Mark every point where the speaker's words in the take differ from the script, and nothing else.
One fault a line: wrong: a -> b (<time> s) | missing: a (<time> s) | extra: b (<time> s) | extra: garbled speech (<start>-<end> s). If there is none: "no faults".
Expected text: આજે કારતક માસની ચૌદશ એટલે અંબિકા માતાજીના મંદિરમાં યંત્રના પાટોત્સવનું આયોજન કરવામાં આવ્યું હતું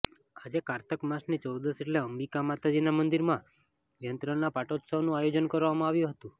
no faults